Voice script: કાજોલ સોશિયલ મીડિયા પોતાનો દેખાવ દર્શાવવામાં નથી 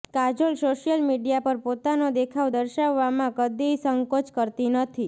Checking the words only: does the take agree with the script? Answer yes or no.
no